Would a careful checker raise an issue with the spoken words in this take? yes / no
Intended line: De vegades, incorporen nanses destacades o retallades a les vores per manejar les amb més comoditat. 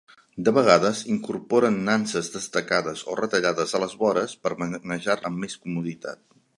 yes